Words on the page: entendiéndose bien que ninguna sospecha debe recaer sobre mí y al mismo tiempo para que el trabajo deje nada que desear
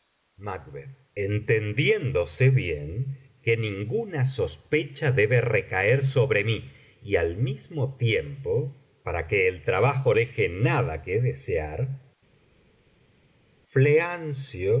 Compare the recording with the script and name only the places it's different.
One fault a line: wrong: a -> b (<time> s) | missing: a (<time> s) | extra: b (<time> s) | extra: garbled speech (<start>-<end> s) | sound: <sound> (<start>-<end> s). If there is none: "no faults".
no faults